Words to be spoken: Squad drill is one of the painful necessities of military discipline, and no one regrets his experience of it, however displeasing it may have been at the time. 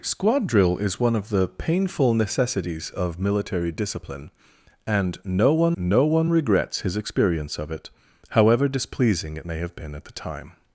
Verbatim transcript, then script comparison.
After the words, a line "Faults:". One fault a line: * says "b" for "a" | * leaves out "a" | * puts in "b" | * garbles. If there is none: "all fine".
Squad drill is one of the painful necessities of military discipline, and no one no one regrets his experience of it, however displeasing it may have been at the time.
Faults:
* puts in "no one"